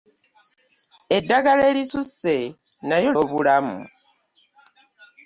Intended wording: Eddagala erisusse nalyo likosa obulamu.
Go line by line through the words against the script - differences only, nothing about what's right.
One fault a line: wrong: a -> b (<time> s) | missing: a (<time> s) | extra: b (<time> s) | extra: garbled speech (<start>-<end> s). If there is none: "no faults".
missing: likosa (3.1 s)